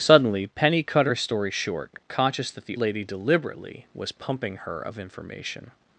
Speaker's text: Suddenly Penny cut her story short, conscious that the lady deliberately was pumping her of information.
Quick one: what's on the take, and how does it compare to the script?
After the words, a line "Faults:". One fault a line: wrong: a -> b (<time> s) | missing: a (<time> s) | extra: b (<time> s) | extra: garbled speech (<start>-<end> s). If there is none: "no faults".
Suddenly Penny cut her story short, conscious that the lady deliberately was pumping her of information.
Faults:
no faults